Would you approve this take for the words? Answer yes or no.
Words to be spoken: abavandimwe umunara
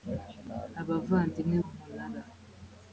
yes